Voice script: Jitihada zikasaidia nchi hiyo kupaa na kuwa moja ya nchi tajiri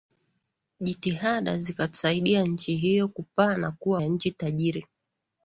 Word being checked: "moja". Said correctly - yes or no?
no